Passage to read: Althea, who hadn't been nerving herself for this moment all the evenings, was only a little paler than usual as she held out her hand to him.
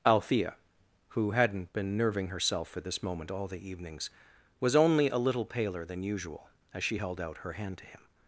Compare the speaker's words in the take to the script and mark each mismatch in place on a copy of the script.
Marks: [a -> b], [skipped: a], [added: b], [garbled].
Althea, who hadn't been nerving herself for this moment all the evenings, was only a little paler than usual as she held out her hand to him.